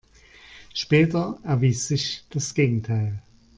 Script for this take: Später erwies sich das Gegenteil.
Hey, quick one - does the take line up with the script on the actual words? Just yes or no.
yes